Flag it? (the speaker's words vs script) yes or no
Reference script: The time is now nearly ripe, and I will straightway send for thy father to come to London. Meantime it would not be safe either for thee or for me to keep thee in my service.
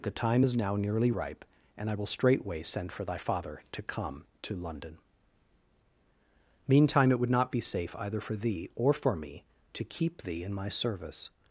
no